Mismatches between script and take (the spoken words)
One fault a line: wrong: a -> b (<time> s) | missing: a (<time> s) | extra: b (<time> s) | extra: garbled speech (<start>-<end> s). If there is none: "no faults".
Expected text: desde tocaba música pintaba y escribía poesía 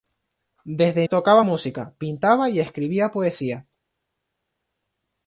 no faults